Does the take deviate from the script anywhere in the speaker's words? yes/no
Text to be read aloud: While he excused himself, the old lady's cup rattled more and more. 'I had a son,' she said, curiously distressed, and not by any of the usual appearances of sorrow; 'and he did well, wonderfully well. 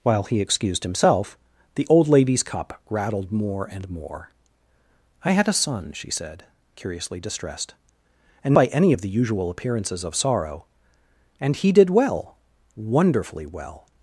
yes